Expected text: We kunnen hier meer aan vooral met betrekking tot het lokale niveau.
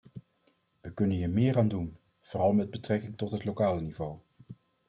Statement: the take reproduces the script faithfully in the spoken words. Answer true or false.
false